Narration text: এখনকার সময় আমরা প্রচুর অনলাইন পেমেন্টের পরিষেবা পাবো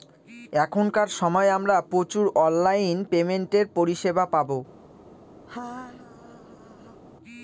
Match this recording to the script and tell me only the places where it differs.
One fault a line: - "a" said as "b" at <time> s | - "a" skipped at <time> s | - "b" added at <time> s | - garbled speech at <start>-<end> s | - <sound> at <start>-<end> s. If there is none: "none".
- laugh at 5.5-7.0 s